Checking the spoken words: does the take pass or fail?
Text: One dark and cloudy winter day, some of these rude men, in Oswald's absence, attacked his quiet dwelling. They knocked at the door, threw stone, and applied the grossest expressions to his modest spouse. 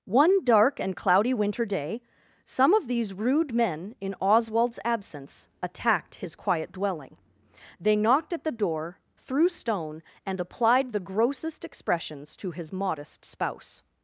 pass